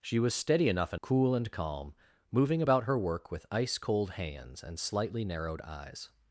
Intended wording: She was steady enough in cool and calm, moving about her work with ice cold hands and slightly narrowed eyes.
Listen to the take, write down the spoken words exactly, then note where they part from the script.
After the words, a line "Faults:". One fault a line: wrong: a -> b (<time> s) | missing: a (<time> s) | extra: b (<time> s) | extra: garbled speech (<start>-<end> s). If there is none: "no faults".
She was steady enough in cool and calm, moving about her work with ice cold hands and slightly narrowed eyes.
Faults:
no faults